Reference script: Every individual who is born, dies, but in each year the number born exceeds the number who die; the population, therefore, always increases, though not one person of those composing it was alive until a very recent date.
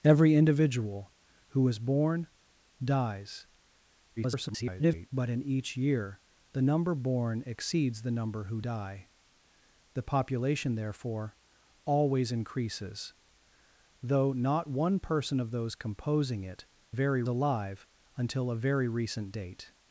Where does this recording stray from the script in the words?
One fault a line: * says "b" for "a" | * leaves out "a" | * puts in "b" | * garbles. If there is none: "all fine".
* garbles
* says "very" for "was"